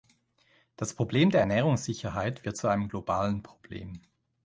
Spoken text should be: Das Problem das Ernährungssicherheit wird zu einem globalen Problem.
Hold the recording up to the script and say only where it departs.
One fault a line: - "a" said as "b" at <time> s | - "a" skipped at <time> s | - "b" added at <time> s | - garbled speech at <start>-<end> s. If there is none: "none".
- "das" said as "der" at 1.3 s